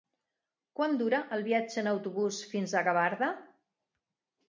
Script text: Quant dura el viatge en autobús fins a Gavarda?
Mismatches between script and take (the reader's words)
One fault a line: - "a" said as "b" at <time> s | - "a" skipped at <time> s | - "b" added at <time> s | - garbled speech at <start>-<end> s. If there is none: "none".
none